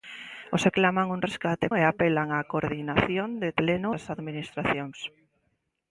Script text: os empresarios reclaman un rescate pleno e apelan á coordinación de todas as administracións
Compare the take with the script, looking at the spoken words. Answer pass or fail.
fail